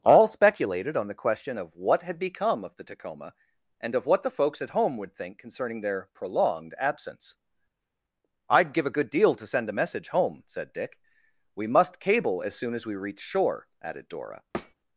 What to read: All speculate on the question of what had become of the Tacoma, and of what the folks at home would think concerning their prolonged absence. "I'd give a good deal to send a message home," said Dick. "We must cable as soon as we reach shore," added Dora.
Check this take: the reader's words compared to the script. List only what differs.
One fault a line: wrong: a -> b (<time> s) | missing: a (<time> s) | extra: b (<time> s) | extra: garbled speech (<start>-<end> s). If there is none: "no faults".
wrong: speculate -> speculated (0.3 s)